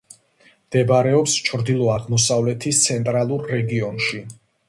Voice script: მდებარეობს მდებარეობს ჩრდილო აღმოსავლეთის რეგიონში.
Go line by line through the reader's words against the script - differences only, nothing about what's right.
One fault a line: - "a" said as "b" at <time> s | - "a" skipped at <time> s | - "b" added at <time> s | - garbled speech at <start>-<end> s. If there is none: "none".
- "მდებარეობს" skipped at 1.4 s
- "ცენტრალურ" added at 2.9 s